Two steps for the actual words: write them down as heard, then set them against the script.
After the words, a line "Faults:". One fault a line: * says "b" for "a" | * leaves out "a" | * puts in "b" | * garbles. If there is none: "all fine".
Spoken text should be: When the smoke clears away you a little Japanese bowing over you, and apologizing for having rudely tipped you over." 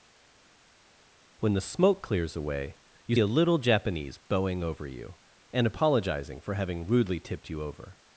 When the smoke clears away you a little Japanese bowing over you, and apologizing for having rudely tipped you over."
Faults:
all fine